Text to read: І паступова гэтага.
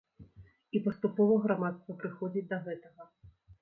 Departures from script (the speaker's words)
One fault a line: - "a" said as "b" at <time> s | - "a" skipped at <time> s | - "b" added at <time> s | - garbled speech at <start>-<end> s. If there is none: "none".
- "грамадства прыходзіць да" added at 1.4 s